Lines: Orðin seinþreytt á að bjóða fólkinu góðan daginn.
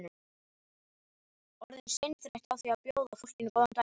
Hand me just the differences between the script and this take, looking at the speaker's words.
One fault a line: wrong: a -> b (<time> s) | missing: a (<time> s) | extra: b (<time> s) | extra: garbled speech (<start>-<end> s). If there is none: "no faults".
extra: því (2.6 s)